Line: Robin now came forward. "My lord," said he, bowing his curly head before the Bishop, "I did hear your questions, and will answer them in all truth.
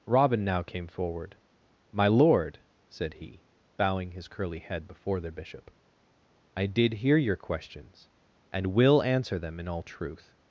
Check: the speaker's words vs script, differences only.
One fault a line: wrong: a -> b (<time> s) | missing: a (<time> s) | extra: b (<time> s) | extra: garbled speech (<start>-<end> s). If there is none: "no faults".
no faults